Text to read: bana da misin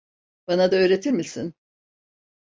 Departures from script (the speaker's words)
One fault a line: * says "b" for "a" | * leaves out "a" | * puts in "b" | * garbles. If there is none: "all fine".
* puts in "öğretir"